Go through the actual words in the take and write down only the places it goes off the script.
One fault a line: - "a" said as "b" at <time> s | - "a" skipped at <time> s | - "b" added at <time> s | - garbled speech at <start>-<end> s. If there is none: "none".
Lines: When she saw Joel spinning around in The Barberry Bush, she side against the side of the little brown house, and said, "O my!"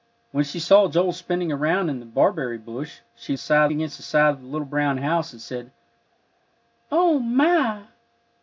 none